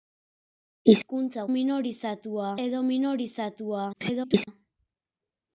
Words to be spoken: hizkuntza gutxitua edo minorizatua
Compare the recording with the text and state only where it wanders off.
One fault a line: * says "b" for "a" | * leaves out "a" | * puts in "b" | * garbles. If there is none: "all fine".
* says "minorizatua" for "gutxitua"
* garbles